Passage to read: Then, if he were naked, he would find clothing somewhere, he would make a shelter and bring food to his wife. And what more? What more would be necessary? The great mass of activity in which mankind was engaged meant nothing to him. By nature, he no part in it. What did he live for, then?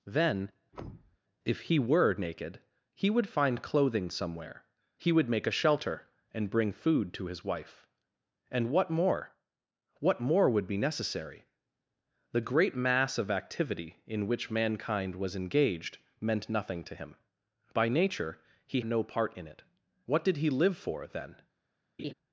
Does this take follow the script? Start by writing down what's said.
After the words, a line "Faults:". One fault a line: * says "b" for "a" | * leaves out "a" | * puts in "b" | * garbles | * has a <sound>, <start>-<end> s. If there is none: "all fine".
Then, if he were naked, he would find clothing somewhere, he would make a shelter and bring food to his wife. And what more? What more would be necessary? The great mass of activity in which mankind was engaged meant nothing to him. By nature, he no part in it. What did he live for, then?
Faults:
* has a thud, 0.7-1.2 s
* has a laugh, 22.0-22.1 s